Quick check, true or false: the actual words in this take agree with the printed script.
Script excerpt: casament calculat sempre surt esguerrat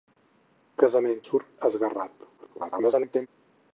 false